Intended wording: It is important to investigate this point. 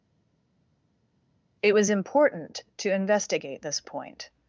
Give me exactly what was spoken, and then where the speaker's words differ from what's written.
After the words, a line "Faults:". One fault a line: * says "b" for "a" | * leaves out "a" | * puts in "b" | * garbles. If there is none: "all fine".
It was important to investigate this point.
Faults:
* says "was" for "is"